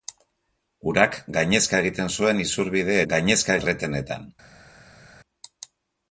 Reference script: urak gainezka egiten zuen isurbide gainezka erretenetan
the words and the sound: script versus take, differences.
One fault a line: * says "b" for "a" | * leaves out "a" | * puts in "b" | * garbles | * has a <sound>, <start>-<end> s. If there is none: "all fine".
all fine